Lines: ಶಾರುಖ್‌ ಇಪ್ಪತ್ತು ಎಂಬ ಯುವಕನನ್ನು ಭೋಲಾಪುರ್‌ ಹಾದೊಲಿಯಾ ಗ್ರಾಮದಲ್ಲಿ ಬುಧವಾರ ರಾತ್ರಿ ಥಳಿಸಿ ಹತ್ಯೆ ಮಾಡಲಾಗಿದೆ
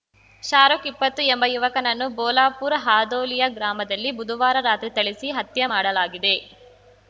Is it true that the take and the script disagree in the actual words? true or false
false